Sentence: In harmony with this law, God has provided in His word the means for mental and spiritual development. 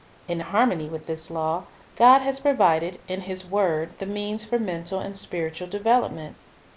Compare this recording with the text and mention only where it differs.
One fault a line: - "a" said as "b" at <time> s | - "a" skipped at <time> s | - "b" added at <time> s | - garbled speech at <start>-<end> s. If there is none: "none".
none